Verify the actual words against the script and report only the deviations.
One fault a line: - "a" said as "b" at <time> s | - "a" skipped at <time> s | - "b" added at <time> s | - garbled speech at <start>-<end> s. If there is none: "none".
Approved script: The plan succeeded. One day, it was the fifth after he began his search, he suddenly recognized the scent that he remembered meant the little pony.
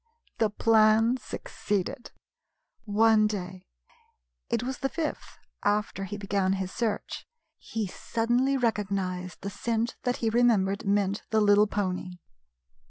none